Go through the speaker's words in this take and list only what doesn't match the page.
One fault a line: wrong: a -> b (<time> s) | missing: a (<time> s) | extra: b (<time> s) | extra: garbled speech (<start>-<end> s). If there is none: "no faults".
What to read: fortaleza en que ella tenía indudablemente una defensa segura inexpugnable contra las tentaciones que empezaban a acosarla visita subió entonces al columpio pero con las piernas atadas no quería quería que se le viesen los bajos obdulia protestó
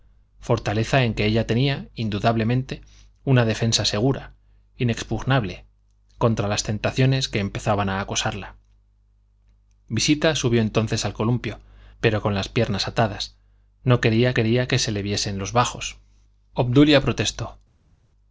no faults